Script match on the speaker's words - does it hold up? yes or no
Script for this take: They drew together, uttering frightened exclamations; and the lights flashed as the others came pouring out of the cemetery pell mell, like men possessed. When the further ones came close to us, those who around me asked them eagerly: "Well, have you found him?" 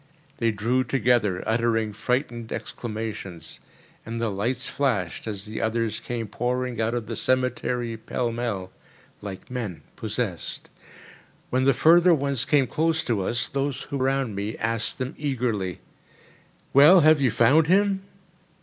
yes